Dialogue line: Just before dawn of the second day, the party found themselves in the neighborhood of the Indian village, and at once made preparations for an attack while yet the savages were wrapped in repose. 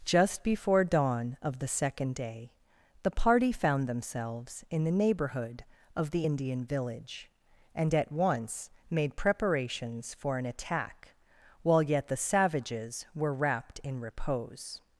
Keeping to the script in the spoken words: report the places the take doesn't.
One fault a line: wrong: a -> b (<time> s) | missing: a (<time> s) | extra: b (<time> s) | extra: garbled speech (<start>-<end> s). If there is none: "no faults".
no faults